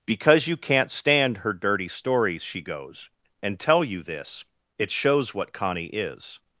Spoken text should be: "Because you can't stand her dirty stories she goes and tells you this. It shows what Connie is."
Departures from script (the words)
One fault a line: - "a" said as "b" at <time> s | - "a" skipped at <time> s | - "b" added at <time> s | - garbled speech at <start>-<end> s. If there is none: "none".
- "tells" said as "tell" at 3.6 s